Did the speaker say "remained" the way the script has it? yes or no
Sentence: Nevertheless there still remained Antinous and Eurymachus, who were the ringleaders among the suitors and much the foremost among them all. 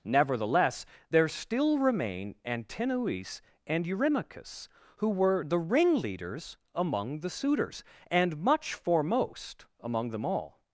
no